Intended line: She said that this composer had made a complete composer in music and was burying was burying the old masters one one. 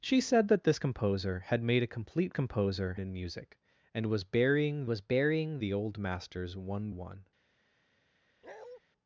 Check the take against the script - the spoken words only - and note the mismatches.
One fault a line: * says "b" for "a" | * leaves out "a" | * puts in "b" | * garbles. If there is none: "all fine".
all fine